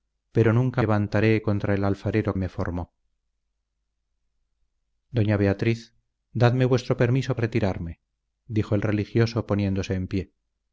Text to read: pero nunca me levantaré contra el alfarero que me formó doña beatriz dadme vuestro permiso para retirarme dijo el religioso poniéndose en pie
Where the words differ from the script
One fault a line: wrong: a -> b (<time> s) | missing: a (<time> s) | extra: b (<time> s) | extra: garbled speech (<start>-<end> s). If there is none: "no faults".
missing: me (0.8 s)
missing: que (2.4 s)
missing: para (7.4 s)